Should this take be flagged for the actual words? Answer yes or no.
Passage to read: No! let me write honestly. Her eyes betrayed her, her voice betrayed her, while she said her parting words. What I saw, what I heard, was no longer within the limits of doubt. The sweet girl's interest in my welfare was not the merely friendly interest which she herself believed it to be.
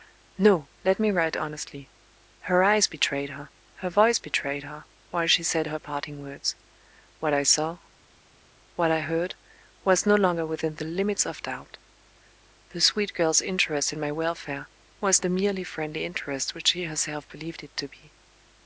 yes